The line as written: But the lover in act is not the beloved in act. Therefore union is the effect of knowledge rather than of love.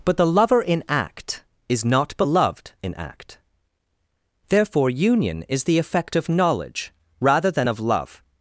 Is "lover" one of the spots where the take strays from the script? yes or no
no